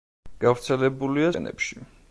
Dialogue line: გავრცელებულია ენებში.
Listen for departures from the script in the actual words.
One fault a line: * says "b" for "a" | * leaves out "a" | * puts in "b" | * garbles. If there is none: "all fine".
all fine